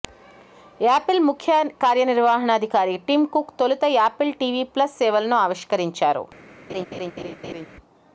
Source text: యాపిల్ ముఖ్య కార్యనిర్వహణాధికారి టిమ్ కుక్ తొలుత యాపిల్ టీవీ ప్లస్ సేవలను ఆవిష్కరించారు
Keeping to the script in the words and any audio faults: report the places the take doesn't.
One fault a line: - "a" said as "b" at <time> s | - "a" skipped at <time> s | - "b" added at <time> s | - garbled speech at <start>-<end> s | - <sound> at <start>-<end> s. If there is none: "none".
- laugh at 6.7-7.7 s